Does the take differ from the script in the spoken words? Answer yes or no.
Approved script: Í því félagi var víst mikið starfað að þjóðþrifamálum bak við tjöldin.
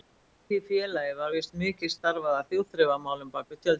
no